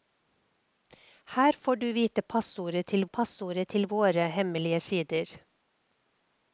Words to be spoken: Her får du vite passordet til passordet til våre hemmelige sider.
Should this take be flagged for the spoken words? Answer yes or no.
no